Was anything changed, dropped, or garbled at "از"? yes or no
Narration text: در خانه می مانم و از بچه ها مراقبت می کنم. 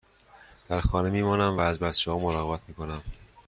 no